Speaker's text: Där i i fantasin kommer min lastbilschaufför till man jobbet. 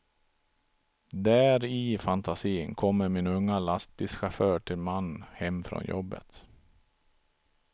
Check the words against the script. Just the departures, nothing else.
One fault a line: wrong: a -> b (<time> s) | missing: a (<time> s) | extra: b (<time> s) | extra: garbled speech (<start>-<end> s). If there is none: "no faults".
missing: i (2.0 s)
extra: unga (3.3 s)
extra: hem från (5.3 s)